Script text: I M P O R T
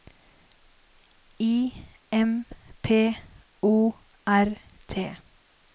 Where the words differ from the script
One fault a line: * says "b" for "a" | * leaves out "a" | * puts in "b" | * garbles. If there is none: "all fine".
all fine